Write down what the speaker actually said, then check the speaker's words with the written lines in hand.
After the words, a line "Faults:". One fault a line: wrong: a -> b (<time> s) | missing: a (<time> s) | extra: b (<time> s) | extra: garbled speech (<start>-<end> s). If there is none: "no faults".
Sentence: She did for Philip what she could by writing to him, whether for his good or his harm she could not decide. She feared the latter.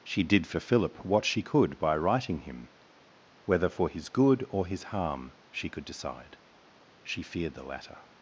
She did for Philip what she could by writing him, whether for his good or his harm she could decide. She feared the latter.
Faults:
missing: to (2.4 s)
missing: not (5.8 s)